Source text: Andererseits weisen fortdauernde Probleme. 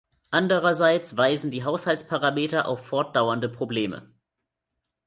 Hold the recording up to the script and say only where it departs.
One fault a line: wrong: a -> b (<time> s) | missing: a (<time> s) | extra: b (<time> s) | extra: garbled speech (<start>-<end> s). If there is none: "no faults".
extra: die Haushaltsparameter auf (1.5 s)